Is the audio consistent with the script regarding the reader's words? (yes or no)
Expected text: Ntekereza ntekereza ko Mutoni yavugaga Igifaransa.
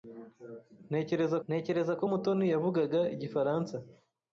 yes